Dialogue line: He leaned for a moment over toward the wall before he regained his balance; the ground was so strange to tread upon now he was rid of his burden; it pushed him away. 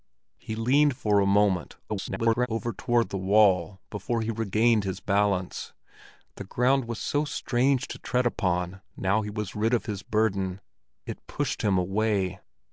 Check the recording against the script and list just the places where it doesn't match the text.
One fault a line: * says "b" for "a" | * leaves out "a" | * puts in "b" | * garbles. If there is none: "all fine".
* garbles